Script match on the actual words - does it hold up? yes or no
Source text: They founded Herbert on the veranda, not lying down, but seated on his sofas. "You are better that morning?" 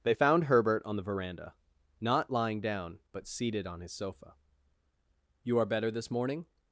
no